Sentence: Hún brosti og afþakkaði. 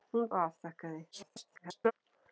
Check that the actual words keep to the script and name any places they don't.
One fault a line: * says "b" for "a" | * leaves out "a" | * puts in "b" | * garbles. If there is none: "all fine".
* leaves out "brosti"
* garbles